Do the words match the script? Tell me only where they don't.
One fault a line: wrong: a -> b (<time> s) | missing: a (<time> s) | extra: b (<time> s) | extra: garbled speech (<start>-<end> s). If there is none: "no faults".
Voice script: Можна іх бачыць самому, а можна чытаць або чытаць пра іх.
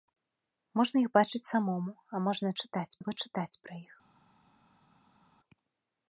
no faults